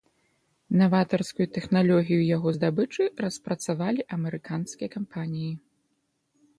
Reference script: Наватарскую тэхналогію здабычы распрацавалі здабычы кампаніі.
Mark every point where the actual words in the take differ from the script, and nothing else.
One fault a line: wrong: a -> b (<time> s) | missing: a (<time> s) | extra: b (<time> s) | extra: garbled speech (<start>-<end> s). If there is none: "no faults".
extra: яго (2.4 s)
wrong: здабычы -> амерыканскія (4.2 s)